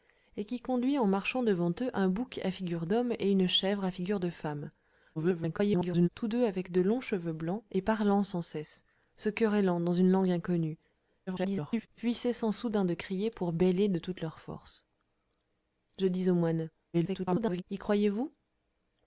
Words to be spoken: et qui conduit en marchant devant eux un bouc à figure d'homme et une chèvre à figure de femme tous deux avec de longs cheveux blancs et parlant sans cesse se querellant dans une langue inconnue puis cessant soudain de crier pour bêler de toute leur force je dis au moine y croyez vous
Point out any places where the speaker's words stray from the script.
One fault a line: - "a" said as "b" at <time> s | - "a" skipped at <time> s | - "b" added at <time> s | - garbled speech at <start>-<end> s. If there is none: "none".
- garbled speech at 5.2-6.1 s
- garbled speech at 11.3-11.9 s
- garbled speech at 16.9-17.6 s